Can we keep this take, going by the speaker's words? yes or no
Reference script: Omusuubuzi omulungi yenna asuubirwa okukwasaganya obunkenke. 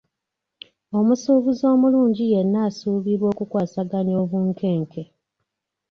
yes